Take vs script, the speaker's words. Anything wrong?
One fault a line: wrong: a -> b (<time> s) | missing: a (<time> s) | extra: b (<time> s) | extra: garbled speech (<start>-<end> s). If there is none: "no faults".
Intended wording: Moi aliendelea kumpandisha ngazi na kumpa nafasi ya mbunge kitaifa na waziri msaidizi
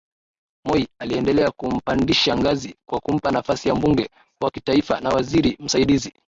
wrong: na -> kwa (2.9 s)
extra: wa (4.4 s)